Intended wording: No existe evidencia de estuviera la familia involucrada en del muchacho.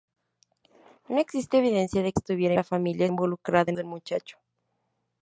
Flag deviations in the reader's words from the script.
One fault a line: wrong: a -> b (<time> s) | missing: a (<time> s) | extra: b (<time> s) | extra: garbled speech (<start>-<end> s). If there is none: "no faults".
no faults